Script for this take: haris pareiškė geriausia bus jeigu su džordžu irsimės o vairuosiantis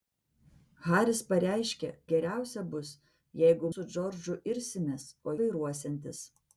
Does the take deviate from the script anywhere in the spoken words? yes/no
no